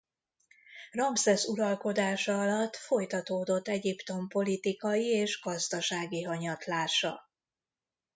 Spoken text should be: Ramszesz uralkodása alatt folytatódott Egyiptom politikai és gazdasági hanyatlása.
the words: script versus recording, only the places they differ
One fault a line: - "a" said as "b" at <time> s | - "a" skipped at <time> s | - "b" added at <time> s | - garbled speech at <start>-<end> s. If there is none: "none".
none